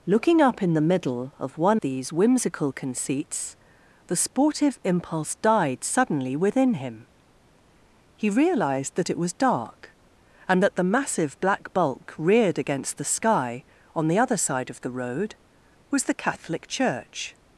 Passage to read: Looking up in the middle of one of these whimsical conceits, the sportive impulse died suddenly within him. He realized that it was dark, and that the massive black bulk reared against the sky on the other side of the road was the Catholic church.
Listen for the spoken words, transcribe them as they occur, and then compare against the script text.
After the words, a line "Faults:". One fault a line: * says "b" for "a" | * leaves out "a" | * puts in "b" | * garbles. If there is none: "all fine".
Looking up in the middle of one these whimsical conceits, the sportive impulse died suddenly within him. He realized that it was dark, and that the massive black bulk reared against the sky on the other side of the road was the Catholic church.
Faults:
* leaves out "of"